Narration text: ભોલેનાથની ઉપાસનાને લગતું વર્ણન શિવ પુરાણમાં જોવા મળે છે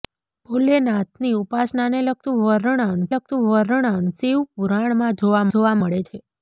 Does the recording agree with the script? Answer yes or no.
no